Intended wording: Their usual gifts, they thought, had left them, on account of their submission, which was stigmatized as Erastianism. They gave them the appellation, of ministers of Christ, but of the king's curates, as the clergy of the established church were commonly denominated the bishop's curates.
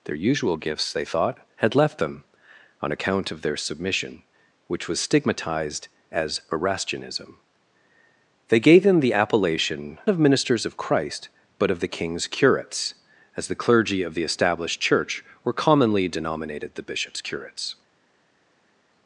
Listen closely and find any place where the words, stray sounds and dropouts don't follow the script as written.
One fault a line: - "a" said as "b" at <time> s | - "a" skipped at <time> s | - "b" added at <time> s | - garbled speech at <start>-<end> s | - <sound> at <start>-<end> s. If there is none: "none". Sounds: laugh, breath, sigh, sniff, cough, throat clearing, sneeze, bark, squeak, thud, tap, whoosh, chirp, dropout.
none